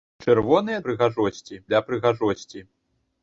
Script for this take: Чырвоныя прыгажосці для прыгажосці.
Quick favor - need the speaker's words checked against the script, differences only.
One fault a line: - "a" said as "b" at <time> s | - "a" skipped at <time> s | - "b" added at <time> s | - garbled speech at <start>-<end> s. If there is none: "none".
none